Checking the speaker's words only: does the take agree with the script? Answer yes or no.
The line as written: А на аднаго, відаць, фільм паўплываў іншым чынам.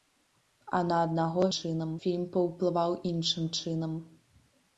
no